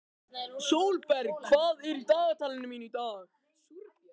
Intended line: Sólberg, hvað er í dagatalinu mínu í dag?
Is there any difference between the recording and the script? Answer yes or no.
no